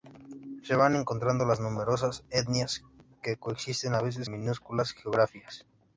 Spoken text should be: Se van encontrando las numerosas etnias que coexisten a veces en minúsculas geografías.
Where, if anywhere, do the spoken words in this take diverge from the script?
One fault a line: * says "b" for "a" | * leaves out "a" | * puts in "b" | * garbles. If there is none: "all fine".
* leaves out "en"